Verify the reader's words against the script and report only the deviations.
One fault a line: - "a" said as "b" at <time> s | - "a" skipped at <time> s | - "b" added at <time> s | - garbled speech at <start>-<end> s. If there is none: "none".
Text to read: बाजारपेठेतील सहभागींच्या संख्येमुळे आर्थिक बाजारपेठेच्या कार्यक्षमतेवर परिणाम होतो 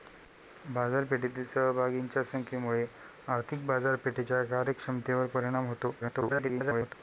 - garbled speech at 6.0-6.9 s